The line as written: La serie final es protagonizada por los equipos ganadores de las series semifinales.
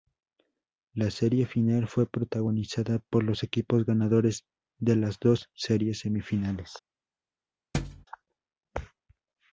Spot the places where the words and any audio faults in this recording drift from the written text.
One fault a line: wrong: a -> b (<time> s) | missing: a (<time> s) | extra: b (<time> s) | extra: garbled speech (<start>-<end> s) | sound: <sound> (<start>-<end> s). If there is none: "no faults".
wrong: es -> fue (1.9 s)
extra: dos (5.2 s)
sound: thud (7.7-8.1 s)